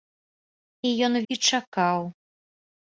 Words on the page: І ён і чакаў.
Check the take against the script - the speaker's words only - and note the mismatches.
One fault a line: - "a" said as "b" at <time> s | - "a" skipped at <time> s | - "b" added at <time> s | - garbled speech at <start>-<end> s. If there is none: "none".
none